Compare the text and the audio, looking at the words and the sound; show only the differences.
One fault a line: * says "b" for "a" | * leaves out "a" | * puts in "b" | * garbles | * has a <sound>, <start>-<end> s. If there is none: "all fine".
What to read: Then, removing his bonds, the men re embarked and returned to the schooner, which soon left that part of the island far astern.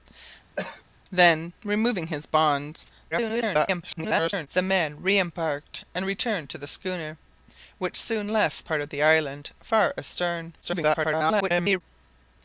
* has a cough, 0.6-0.8 s
* garbles
* leaves out "that"
* garbles